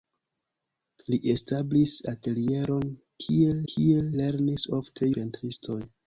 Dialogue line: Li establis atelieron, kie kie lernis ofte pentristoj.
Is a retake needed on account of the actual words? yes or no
no